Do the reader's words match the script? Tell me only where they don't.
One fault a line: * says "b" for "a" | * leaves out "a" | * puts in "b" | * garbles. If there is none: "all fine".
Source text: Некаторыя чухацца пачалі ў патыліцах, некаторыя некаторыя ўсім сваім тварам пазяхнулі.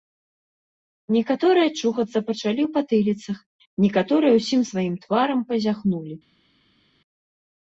* leaves out "некаторыя"